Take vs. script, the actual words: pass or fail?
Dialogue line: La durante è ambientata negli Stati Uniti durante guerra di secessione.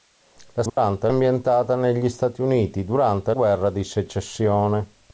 pass